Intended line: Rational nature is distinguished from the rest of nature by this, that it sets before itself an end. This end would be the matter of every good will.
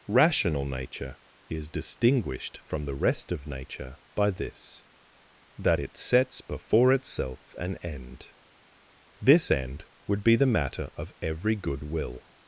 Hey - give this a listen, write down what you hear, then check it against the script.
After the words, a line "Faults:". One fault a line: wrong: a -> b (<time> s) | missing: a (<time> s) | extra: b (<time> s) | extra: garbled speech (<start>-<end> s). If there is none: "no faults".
Rational nature is distinguished from the rest of nature by this, that it sets before itself an end. This end would be the matter of every good will.
Faults:
no faults